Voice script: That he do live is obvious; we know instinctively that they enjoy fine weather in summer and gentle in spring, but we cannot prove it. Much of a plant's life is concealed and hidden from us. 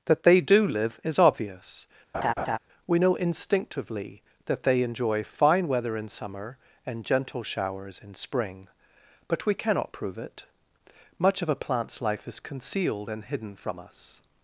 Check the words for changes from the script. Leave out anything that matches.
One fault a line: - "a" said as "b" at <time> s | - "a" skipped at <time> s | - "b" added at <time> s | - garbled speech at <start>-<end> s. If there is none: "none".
- "he" said as "they" at 0.2 s
- "showers" added at 7.4 s